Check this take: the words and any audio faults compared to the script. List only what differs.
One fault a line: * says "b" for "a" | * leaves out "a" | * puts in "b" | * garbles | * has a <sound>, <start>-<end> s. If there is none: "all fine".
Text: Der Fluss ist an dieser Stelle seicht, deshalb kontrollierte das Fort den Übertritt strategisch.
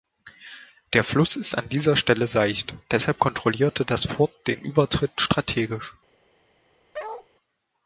* has a bark, 6.9-7.3 s